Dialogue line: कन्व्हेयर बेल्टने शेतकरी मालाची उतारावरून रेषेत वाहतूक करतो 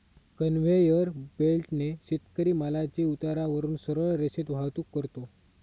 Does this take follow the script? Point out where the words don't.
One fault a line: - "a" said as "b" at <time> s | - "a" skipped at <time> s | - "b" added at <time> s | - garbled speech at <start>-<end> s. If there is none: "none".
- "सरळ" added at 3.8 s